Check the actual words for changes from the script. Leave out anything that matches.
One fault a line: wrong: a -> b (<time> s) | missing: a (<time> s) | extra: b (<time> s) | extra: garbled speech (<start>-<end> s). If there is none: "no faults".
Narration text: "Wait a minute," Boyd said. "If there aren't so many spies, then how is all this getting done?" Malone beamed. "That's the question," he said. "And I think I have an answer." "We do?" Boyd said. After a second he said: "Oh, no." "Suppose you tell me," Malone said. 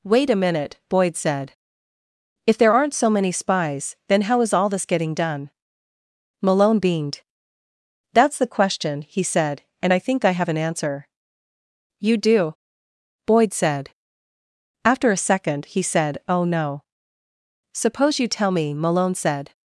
wrong: We -> You (12.0 s)